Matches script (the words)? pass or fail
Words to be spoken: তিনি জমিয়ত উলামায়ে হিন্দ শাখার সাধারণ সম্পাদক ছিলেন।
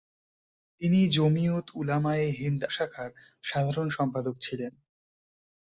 pass